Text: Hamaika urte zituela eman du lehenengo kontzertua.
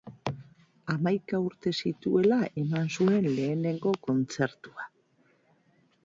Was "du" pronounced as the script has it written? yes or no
no